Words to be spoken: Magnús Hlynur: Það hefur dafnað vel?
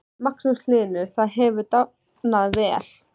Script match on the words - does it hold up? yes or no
yes